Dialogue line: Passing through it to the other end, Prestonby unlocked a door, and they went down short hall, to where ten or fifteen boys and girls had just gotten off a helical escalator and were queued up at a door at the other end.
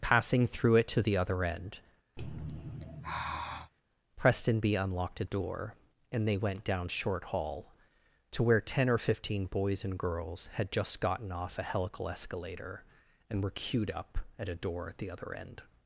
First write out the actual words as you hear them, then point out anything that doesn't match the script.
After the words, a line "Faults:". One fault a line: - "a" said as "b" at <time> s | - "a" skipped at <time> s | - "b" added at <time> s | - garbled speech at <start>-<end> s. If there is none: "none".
Passing through it to the other end, Prestonby unlocked a door, and they went down short hall, to where ten or fifteen boys and girls had just gotten off a helical escalator and were queued up at a door at the other end.
Faults:
none